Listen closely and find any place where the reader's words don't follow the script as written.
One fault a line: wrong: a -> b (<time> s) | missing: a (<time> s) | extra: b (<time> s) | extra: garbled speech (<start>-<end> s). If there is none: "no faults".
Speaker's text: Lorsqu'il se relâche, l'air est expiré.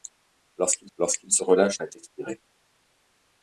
extra: lorsqu'il (1.0 s)
missing: l'air (1.8 s)